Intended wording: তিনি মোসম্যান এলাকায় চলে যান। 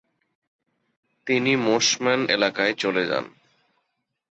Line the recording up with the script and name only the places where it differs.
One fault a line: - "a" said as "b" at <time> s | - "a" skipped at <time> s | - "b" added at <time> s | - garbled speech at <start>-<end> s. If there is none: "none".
none